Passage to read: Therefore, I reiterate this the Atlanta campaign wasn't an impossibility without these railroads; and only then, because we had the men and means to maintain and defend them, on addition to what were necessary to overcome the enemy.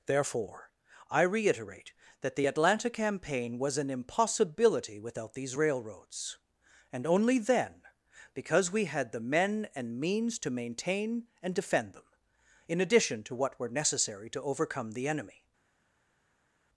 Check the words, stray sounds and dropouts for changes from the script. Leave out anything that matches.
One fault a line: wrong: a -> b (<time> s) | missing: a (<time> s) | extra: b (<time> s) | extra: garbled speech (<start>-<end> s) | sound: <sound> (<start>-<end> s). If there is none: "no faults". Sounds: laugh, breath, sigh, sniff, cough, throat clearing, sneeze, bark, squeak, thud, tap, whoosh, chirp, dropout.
wrong: this -> that (2.2 s)
wrong: wasn't -> was (3.6 s)
wrong: on -> in (12.7 s)